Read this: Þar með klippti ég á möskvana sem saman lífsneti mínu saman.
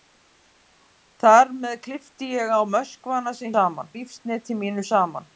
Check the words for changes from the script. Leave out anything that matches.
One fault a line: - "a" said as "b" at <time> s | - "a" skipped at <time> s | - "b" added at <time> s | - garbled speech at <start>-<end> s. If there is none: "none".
none